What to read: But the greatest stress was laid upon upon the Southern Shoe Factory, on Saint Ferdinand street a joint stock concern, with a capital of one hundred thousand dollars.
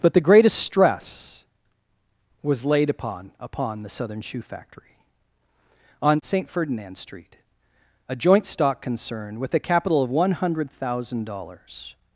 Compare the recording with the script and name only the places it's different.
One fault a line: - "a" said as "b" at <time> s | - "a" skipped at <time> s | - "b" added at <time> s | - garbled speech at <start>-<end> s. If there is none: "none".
none